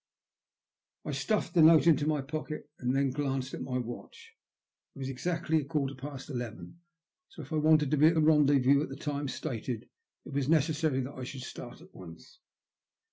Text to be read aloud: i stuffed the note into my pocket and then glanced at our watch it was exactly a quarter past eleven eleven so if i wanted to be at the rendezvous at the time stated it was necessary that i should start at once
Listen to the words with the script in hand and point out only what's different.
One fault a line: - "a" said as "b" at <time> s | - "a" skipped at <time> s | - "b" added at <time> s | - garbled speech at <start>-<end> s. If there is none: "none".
- "our" said as "my" at 3.6 s
- "eleven" skipped at 6.8 s